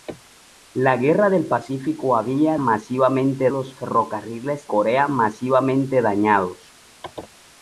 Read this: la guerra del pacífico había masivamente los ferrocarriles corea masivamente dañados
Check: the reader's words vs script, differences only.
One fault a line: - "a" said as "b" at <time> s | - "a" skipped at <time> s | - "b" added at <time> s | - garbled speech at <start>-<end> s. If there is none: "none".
none